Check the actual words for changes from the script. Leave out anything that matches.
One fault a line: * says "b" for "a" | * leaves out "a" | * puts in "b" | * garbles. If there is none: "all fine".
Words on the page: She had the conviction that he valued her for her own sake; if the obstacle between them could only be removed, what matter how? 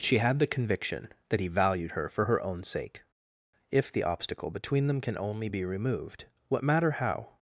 * says "can" for "could"